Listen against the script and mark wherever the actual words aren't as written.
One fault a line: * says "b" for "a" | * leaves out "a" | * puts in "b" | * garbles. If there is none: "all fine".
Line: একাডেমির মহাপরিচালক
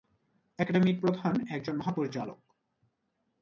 * puts in "প্রধান একজন"